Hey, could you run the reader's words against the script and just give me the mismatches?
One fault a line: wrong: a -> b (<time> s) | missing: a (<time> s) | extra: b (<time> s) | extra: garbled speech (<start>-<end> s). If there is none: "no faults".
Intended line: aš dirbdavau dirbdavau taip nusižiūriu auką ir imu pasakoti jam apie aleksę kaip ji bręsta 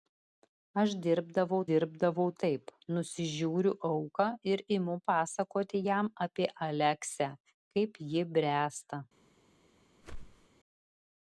no faults